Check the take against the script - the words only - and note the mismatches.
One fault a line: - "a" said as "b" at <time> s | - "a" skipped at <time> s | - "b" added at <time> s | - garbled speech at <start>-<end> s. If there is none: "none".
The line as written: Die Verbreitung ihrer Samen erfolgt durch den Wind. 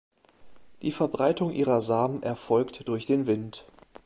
none